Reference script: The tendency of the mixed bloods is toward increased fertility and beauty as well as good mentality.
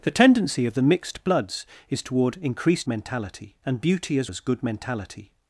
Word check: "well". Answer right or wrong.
wrong